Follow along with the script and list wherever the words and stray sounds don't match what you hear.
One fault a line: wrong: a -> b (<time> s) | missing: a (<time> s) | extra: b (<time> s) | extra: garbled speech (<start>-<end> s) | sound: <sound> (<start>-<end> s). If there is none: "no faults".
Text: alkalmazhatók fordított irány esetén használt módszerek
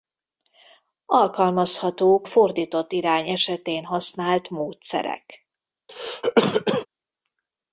sound: cough (5.9-6.9 s)